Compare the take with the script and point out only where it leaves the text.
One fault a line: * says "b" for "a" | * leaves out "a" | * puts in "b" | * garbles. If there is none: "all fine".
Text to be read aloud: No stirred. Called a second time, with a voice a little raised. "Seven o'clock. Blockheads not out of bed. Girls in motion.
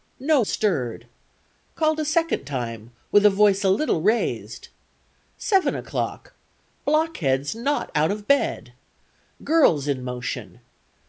all fine